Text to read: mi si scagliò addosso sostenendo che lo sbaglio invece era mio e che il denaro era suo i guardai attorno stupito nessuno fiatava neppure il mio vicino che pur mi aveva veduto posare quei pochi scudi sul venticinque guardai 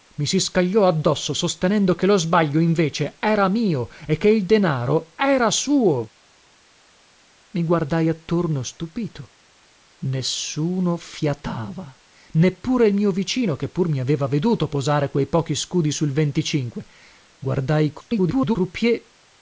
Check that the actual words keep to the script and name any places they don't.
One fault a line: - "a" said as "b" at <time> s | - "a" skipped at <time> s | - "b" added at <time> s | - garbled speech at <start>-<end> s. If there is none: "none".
- garbled speech at 18.0-18.6 s